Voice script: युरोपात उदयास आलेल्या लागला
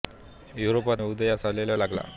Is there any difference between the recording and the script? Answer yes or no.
no